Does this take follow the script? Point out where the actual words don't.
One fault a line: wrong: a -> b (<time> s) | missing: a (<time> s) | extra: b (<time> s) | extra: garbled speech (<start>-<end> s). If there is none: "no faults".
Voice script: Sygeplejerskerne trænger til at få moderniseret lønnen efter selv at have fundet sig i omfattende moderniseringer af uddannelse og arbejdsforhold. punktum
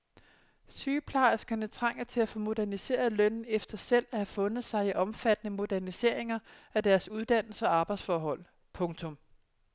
extra: deres (6.8 s)